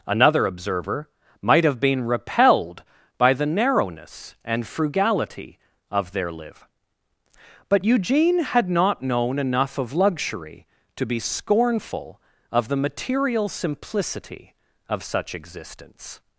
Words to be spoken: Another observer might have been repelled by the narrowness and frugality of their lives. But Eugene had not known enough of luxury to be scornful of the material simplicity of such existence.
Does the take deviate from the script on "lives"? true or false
true